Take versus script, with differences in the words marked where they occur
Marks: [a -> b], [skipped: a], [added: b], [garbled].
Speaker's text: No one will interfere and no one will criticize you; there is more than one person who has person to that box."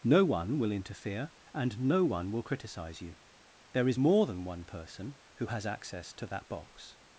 No one will interfere and no one will criticize you; there is more than one person who has [person -> access] to that box."